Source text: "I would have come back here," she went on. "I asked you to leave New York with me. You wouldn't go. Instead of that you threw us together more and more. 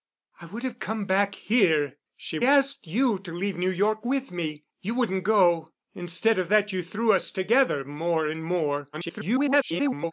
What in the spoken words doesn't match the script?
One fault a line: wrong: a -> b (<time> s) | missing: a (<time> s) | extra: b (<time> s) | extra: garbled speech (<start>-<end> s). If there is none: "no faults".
missing: went on I (2.4 s)
extra: garbled speech (8.9-10.1 s)